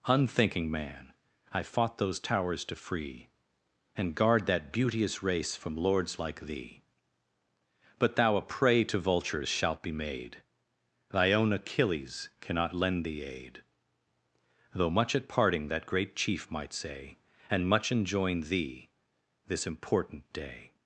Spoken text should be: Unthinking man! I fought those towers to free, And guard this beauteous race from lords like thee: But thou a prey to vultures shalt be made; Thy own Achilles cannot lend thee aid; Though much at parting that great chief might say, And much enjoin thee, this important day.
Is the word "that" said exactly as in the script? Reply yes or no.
yes